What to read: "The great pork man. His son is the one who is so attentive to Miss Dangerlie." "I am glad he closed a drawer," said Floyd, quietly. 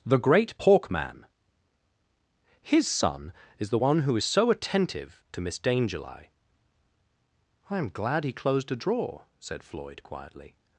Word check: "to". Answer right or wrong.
right